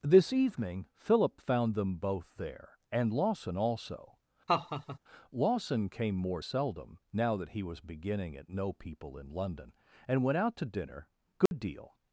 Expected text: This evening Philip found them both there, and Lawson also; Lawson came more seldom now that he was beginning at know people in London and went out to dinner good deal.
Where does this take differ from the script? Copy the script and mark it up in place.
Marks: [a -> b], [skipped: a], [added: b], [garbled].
This evening Philip found them both there, and Lawson also; Lawson came more seldom now that he was beginning at know people in London and went out to dinner good deal.